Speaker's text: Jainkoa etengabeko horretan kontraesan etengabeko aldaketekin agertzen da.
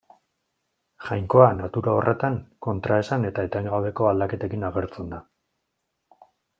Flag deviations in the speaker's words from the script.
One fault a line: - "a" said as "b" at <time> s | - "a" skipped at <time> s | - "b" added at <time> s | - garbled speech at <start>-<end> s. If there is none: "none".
- "etengabeko" said as "natura" at 1.6 s
- "eta" added at 3.3 s